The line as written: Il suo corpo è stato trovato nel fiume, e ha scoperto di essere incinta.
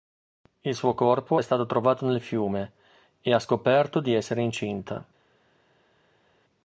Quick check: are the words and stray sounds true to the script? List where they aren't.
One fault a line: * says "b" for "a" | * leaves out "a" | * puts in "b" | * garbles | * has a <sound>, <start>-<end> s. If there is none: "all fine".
all fine